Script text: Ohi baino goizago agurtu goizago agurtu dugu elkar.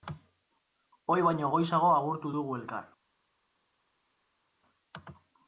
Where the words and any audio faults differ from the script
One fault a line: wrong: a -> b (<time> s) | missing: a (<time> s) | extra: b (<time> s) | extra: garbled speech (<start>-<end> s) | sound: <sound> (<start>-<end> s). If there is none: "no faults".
missing: goizago agurtu (2.3 s)